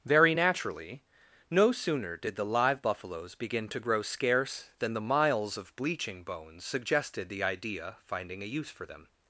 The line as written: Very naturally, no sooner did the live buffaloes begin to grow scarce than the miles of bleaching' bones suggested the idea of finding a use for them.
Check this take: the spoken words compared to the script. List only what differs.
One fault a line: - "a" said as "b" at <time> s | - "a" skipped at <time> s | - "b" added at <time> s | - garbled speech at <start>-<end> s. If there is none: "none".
- "of" skipped at 8.0 s